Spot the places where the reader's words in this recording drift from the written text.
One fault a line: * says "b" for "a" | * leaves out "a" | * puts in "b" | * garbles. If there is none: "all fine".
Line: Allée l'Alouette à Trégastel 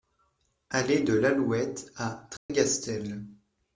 * puts in "de"